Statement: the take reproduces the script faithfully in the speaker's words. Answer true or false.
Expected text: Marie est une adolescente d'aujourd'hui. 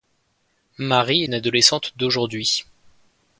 false